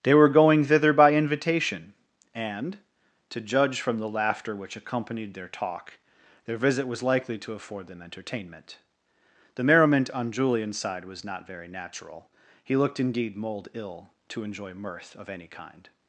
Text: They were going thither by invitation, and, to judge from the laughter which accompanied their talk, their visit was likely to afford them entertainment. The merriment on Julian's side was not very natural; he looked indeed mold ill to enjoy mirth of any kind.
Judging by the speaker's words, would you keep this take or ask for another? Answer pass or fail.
pass